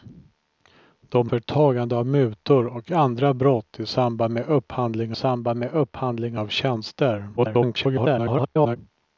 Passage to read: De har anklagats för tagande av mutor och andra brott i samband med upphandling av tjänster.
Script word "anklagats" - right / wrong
wrong